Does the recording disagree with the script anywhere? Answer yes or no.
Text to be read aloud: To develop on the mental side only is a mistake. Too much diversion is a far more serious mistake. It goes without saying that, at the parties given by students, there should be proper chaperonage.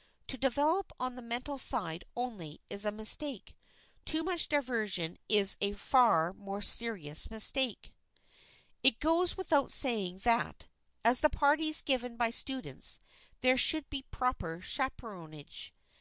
no